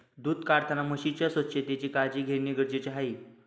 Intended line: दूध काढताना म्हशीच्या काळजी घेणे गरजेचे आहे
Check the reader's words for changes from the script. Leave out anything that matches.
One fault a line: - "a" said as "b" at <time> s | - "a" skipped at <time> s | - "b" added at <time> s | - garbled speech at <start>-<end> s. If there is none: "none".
- "स्वच्छतेची" added at 1.3 s